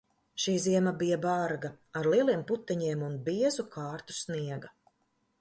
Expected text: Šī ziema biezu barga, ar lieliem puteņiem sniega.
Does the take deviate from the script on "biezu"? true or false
true